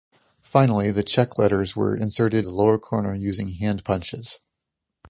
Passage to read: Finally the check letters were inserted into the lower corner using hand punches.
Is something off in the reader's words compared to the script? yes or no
yes